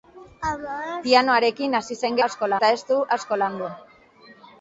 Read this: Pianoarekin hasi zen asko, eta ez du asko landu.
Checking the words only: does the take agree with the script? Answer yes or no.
yes